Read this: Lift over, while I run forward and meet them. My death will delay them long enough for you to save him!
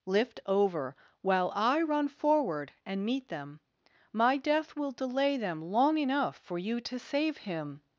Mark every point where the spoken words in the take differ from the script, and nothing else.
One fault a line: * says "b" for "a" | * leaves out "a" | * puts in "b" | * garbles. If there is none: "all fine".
all fine